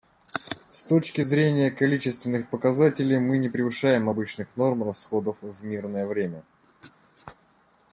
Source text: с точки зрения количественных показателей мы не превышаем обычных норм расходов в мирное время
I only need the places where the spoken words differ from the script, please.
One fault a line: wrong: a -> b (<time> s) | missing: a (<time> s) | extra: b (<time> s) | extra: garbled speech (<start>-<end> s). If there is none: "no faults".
no faults